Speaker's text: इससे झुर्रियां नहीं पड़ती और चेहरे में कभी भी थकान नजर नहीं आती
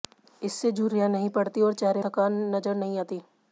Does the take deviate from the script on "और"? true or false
false